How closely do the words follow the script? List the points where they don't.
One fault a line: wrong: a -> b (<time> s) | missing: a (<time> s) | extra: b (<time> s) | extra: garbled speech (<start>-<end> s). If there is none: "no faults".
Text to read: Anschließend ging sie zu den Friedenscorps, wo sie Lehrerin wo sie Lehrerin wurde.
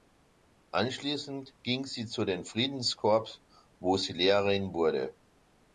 missing: wo sie Lehrerin (4.7 s)